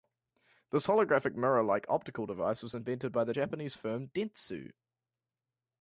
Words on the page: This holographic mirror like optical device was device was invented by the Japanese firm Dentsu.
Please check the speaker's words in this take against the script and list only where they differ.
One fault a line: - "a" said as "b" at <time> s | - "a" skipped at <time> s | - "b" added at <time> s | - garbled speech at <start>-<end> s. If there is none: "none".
- "device was" skipped at 2.8 s